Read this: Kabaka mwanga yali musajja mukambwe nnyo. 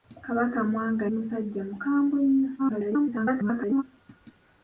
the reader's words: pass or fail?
fail